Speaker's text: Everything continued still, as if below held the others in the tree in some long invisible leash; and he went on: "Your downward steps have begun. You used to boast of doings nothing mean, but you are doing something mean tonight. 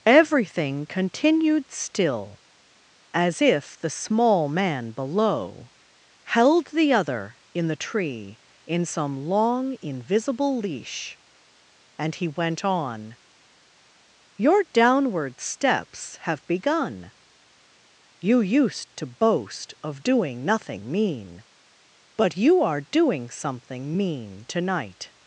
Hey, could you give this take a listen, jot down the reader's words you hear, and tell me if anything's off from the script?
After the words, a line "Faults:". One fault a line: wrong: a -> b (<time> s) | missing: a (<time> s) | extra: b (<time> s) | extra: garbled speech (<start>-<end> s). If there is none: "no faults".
Everything continued still, as if the small man below held the other in the tree in some long invisible leash; and he went on: "Your downward steps have begun. You used to boast of doing nothing mean, but you are doing something mean tonight.
Faults:
extra: the small man (3.8 s)
wrong: others -> other (6.9 s)
wrong: doings -> doing (20.0 s)